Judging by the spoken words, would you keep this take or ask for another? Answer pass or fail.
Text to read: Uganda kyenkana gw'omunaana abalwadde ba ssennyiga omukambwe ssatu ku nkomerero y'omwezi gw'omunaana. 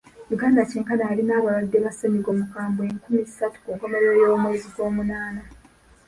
fail